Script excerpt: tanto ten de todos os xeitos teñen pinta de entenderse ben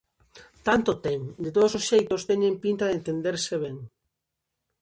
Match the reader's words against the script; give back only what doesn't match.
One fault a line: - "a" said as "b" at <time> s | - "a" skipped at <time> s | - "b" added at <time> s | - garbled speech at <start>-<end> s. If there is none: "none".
none